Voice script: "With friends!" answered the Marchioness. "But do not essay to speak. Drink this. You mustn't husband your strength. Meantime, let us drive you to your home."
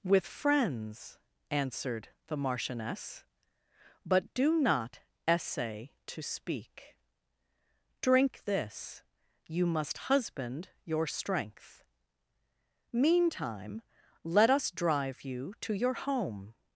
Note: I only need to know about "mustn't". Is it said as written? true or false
false